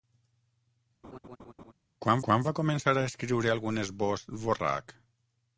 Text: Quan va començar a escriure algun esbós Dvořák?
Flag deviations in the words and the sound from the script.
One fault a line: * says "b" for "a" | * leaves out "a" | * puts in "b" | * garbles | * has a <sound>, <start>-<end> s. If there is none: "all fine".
* has a laugh, 1.0-1.7 s
* puts in "quan"